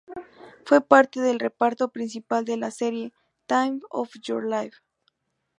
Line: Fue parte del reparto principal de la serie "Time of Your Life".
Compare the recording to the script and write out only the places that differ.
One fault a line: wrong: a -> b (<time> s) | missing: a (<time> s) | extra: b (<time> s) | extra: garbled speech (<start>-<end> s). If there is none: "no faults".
no faults